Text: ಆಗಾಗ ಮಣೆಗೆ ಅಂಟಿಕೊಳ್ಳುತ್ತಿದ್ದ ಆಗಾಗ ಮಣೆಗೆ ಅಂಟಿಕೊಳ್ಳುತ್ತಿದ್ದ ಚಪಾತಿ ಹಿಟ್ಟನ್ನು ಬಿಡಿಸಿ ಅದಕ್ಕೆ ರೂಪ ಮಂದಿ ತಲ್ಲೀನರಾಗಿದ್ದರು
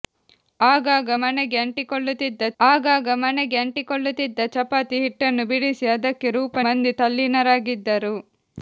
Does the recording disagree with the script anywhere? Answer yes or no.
no